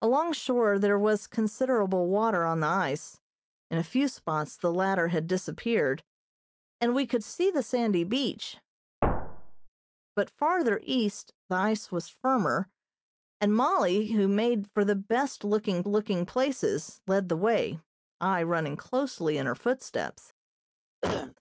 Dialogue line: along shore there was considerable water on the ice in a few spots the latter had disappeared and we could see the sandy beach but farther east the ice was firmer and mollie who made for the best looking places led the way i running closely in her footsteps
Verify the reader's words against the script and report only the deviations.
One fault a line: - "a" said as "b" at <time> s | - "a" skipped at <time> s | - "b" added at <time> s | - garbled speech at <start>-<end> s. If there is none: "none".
- "looking" added at 15.9 s